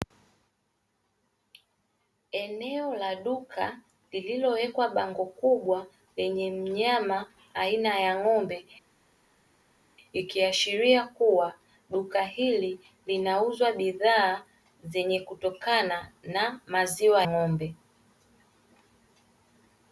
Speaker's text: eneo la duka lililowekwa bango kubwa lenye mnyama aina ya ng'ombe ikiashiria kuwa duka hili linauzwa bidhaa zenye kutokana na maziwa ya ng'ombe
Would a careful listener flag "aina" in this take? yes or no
no